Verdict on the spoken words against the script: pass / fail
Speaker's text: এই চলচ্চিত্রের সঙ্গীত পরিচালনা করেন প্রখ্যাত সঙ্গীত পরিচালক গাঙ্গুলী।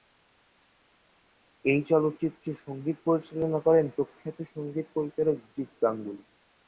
fail